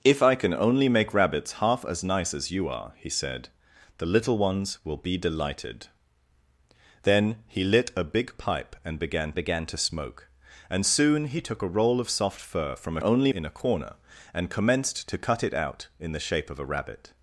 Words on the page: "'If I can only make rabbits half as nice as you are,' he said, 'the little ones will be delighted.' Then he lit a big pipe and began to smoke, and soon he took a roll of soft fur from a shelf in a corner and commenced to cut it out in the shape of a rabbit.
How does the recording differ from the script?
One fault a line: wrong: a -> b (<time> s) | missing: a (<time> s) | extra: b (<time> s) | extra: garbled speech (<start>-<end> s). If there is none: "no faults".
extra: began (9.3 s)
wrong: shelf -> only (13.0 s)